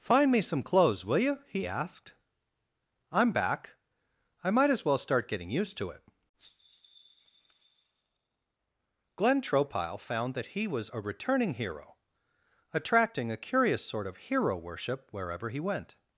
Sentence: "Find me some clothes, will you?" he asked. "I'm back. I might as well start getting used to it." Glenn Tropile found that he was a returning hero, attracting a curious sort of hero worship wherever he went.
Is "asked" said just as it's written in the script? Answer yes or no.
yes